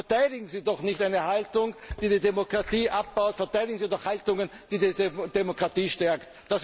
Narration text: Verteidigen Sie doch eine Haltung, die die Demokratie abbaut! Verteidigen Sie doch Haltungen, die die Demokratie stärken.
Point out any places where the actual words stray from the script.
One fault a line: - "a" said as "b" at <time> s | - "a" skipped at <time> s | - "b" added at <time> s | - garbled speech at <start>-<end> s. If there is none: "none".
- "nicht" added at 0.8 s